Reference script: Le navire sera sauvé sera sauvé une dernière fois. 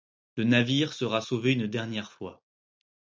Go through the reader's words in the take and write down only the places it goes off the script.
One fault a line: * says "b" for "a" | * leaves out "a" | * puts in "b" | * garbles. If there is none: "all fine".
* leaves out "sera sauvé"